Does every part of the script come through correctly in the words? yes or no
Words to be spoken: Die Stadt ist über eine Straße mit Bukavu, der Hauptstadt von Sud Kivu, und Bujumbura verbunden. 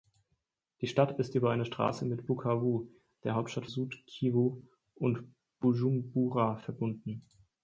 no